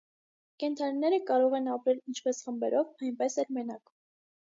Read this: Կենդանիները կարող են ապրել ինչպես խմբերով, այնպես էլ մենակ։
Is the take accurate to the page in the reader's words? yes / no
yes